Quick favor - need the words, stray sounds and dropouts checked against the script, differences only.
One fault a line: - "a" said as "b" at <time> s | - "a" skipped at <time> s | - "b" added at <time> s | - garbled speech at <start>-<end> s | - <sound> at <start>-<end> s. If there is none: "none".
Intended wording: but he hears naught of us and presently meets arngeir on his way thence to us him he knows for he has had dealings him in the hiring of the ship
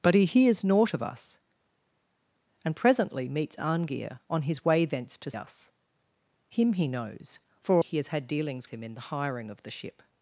none